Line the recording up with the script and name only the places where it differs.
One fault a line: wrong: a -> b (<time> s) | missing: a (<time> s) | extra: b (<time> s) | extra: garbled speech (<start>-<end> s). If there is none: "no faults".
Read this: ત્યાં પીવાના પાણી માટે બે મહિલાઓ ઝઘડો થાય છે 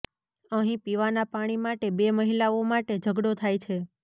wrong: ત્યાં -> અહીં (0.5 s)
extra: માટે (2.7 s)